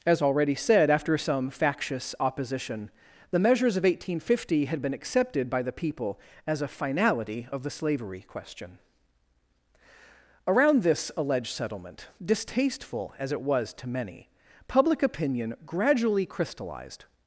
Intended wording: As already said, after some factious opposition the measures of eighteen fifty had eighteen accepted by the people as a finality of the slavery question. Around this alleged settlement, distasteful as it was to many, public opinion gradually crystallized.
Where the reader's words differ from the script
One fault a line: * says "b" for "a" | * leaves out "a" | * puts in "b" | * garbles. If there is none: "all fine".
* says "been" for "eighteen"